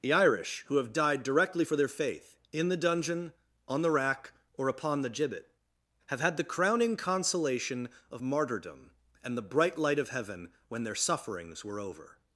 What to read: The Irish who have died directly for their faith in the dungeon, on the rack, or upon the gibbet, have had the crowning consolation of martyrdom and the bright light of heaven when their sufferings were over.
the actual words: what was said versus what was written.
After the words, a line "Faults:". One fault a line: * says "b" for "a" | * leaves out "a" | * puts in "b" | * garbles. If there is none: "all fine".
The Irish who have died directly for their faith in the dungeon, on the rack, or upon the gibbet, have had the crowning consolation of martyrdom and the bright light of heaven when their sufferings were over.
Faults:
all fine